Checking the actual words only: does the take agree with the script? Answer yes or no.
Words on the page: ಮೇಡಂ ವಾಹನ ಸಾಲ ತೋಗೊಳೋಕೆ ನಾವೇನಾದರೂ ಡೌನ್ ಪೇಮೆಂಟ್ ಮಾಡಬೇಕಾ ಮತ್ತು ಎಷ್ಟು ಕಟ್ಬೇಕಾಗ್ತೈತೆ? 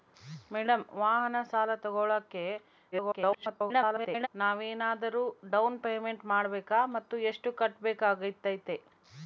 no